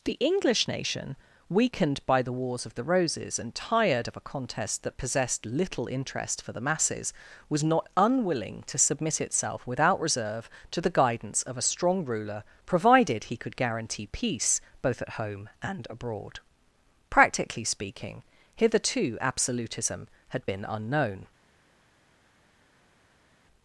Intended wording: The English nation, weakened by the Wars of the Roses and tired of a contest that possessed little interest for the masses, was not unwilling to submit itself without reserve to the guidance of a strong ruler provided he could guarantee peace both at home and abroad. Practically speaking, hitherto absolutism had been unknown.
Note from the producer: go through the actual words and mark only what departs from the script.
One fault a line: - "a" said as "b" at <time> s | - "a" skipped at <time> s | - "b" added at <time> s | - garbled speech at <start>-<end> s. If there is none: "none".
none